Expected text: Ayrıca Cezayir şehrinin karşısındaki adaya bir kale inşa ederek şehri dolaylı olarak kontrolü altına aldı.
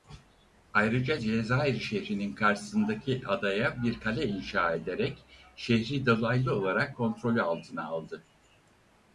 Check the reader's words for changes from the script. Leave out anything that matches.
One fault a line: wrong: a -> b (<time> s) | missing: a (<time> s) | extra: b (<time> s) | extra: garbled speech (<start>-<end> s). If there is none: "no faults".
no faults